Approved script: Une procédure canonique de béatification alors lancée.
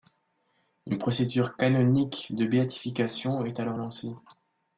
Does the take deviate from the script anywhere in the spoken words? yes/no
yes